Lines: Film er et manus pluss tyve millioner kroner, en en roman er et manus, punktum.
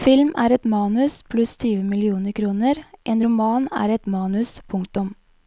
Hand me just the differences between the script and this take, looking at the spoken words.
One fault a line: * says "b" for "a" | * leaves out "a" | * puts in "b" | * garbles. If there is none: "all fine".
* leaves out "en"